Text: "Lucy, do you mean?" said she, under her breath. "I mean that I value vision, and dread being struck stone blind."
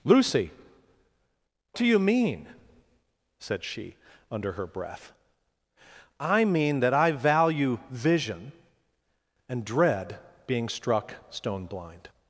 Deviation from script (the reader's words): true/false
false